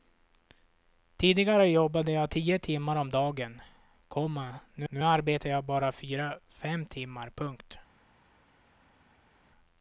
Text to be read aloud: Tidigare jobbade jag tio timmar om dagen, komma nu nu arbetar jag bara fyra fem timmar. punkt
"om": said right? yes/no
yes